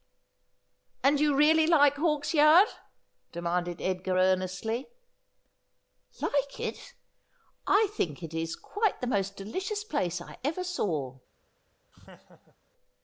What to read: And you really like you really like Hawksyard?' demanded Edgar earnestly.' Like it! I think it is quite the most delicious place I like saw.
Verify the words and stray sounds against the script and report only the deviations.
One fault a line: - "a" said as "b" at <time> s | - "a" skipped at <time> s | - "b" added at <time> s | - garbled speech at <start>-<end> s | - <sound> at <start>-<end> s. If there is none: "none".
- "you really like" skipped at 2.0 s
- "like" said as "ever" at 10.4 s
- laugh at 11.9-12.6 s